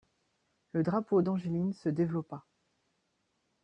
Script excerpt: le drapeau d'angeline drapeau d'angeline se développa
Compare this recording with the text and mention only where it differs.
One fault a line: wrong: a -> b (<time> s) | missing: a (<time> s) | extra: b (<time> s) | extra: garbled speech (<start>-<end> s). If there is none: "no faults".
missing: drapeau d'angeline (1.7 s)